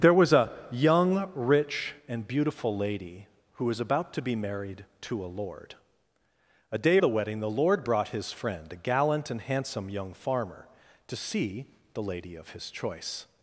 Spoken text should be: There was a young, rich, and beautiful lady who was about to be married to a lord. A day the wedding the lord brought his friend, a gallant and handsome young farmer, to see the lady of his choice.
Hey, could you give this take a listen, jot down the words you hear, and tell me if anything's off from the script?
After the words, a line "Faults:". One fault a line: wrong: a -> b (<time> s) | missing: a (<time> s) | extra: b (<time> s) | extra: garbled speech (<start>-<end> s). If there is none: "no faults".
There was a young, rich, and beautiful lady who was about to be married to a lord. A day the wedding the lord brought his friend, a gallant and handsome young farmer, to see the lady of his choice.
Faults:
no faults